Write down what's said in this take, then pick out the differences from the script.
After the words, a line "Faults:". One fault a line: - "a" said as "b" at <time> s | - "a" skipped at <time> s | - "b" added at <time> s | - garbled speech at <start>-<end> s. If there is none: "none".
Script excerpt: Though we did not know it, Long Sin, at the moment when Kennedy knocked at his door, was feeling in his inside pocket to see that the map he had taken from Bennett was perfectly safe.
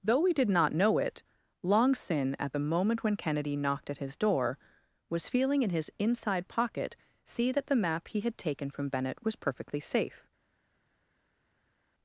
Though we did not know it, Long Sin, at the moment when Kennedy knocked at his door, was feeling in his inside pocket see that the map he had taken from Bennett was perfectly safe.
Faults:
- "to" skipped at 7.0 s